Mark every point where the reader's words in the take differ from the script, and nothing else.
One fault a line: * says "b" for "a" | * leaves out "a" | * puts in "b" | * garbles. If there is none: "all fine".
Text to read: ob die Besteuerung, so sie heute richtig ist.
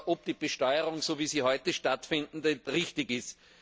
* puts in "wie"
* puts in "stattfindet"